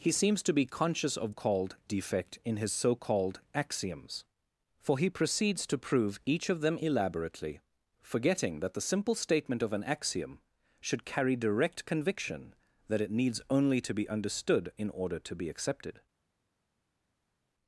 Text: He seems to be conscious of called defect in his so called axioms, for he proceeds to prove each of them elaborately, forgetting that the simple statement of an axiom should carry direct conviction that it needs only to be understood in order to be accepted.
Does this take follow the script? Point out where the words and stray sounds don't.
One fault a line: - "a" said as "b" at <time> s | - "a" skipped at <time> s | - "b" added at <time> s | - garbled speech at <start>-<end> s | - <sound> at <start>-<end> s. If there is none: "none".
none